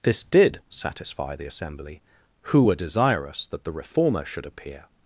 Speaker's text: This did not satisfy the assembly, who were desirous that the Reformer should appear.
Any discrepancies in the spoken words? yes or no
yes